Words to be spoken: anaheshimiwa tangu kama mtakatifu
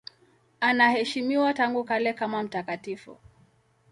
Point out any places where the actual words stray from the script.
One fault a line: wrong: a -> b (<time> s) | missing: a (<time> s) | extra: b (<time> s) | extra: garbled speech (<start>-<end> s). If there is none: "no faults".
extra: kale (1.8 s)